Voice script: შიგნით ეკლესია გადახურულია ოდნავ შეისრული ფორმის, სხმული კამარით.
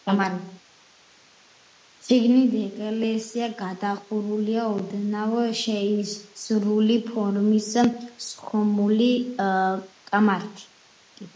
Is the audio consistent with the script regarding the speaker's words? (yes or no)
yes